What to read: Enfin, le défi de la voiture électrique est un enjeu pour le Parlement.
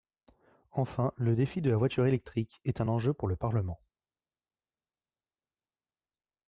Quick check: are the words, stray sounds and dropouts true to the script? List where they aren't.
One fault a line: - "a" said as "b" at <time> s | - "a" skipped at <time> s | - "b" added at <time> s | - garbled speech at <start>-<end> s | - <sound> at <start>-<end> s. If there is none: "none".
none